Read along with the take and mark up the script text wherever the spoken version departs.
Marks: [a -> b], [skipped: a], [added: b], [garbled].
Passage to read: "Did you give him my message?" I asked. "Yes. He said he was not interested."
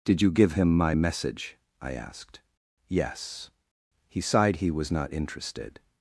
"Did you give him my message?" I asked. "Yes. He [said -> sighed] he was not interested."